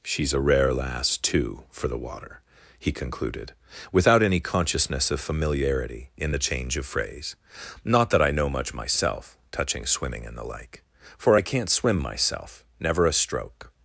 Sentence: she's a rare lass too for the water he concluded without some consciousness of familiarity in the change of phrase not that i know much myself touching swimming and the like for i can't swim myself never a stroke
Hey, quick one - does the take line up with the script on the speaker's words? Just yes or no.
no